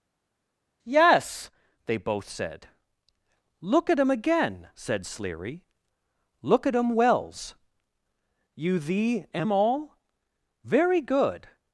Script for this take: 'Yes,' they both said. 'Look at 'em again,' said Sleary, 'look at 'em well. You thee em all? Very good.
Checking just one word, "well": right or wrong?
wrong